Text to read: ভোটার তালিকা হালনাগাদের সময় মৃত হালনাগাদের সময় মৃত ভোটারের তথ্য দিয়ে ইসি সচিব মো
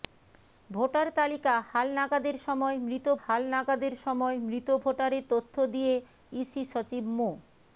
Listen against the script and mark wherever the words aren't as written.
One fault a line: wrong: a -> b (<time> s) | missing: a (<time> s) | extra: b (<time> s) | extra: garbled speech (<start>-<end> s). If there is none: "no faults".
no faults